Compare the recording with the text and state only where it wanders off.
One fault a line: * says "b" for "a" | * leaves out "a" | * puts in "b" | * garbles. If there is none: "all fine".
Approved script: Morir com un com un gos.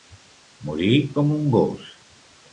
* leaves out "com un"